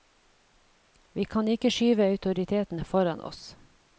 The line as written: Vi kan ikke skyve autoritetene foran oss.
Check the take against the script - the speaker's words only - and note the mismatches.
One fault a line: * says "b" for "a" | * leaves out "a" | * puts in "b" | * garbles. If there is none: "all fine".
all fine